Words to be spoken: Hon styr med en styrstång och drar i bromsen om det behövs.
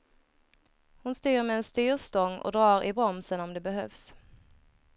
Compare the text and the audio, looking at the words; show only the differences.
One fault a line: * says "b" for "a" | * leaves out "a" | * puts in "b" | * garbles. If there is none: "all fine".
all fine